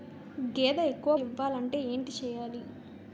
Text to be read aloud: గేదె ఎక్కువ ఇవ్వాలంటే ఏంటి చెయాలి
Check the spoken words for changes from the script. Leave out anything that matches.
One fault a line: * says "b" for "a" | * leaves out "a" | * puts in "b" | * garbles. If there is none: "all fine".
all fine